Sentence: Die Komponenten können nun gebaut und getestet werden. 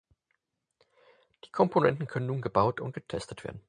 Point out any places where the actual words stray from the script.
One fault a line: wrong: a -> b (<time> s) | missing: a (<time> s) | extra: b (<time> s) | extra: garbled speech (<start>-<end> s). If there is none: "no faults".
no faults